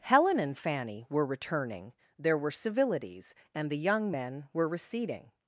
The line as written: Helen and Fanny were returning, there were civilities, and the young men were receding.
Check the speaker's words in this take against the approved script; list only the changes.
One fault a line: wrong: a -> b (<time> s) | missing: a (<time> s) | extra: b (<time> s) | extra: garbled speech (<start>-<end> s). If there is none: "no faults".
no faults